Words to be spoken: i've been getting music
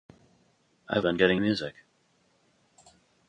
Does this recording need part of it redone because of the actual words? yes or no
no